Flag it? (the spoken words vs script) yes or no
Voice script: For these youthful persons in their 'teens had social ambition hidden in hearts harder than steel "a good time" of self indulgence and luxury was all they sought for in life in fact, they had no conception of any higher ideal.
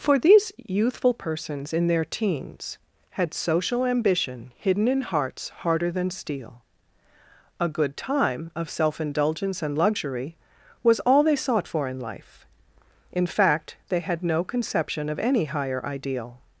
no